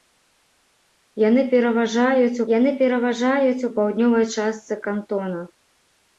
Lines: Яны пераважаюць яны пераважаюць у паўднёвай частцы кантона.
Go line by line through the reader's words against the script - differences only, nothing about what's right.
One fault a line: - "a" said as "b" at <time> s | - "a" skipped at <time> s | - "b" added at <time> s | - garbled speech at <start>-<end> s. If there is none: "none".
none